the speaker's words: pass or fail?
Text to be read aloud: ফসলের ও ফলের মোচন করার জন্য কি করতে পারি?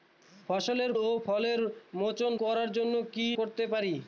pass